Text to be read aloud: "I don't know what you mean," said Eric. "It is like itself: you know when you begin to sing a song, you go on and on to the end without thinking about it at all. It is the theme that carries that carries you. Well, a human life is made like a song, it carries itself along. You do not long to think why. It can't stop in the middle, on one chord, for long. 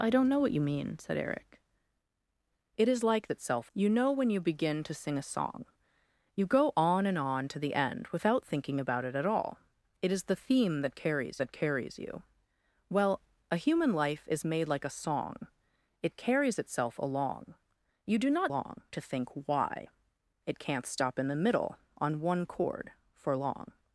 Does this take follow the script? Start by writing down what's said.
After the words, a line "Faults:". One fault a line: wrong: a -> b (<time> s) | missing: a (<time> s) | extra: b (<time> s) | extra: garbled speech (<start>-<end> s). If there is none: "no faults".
"I don't know what you mean," said Eric. "It is like itself: you know when you begin to sing a song, you go on and on to the end without thinking about it at all. It is the theme that carries that carries you. Well, a human life is made like a song, it carries itself along. You do not long to think why. It can't stop in the middle, on one chord, for long.
Faults:
no faults